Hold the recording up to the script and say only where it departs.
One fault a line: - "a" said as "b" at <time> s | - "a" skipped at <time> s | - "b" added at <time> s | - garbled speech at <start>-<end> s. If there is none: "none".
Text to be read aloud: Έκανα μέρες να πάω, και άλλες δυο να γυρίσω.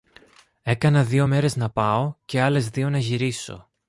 - "δυο" added at 1.0 s